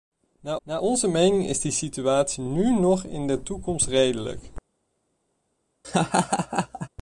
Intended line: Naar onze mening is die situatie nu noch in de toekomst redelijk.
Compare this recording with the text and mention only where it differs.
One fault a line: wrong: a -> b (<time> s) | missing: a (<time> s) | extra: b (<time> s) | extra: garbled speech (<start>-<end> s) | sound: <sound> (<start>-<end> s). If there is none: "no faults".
extra: naar (0.6 s)
sound: laugh (5.8-6.9 s)